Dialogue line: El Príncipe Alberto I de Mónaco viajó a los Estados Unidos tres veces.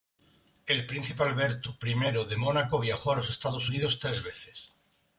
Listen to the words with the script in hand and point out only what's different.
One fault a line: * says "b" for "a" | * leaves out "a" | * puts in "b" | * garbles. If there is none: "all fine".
all fine